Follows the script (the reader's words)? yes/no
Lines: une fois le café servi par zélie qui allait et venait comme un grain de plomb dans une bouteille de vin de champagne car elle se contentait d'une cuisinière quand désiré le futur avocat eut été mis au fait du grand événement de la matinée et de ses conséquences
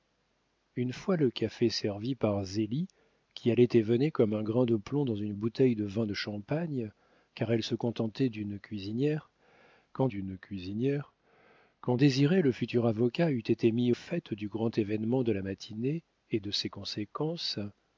no